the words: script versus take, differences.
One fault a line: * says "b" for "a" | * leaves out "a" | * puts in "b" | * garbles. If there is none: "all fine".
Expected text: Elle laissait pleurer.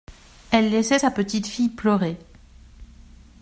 * puts in "sa petite fille"